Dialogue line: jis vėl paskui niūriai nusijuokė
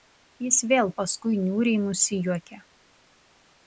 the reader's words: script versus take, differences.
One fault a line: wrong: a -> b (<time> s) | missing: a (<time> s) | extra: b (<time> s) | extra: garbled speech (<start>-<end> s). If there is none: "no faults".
no faults